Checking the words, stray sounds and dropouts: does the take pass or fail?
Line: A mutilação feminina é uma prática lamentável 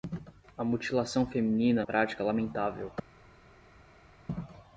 fail